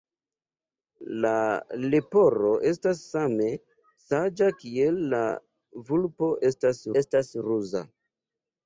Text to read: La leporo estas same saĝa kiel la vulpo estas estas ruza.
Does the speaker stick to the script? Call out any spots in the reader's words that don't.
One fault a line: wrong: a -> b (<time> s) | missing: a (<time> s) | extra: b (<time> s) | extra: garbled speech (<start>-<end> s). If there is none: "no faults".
no faults